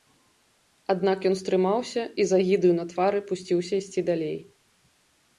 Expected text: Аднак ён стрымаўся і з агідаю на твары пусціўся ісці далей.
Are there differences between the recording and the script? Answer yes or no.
no